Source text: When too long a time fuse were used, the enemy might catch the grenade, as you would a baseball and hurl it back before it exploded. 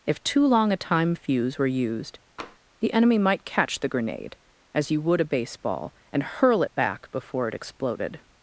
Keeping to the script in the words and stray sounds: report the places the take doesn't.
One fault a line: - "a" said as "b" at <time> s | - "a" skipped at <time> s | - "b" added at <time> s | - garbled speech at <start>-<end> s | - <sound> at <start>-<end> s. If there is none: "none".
- "When" said as "If" at 0.1 s
- tap at 2.4-2.6 s